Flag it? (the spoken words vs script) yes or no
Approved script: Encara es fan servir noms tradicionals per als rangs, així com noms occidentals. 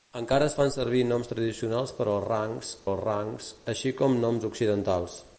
yes